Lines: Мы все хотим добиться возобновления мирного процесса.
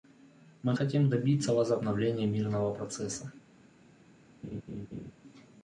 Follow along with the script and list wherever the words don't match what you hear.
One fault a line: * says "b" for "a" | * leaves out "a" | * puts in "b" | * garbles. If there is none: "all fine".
* leaves out "все"